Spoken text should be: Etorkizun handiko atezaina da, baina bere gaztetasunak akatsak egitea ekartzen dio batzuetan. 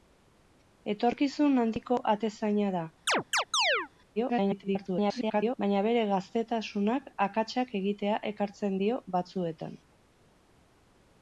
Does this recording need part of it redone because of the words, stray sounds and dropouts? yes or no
yes